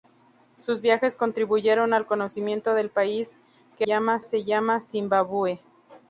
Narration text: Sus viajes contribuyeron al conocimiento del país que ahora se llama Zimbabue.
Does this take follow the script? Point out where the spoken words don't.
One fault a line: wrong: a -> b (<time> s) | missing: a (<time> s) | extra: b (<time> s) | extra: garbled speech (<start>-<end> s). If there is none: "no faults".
wrong: ahora -> llama (3.8 s)